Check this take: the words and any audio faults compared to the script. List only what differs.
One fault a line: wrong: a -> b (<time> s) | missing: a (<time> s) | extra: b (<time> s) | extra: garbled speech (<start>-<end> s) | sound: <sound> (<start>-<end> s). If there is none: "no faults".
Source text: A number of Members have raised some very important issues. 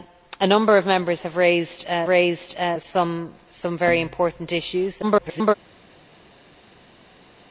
extra: raised (2.1 s)
extra: garbled speech (5.0-5.5 s)